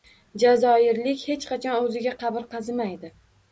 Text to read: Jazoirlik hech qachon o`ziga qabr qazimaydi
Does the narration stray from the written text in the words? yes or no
no